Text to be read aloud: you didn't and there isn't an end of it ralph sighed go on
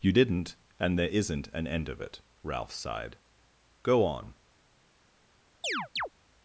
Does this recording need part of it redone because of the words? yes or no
no